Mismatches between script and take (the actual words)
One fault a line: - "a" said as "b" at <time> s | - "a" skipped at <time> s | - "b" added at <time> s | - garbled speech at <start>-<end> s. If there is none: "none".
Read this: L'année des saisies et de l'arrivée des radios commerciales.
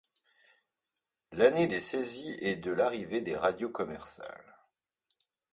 none